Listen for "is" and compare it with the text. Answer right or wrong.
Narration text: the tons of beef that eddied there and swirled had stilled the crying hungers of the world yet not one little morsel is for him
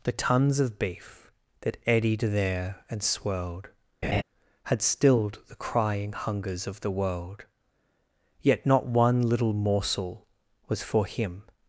wrong